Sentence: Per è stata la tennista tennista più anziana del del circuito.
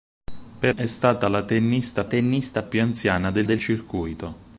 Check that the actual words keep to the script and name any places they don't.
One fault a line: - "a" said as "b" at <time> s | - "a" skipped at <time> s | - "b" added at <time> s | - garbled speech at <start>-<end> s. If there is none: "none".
none